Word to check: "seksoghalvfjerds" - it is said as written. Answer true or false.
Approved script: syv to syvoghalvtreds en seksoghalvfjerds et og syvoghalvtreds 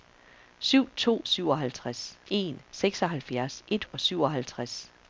true